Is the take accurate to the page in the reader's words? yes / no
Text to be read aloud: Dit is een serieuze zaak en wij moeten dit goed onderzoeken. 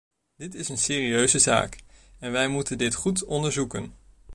yes